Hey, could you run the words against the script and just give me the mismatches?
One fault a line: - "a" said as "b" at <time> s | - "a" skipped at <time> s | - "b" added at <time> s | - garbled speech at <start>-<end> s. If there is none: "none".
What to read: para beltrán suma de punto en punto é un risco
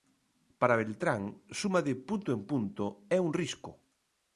none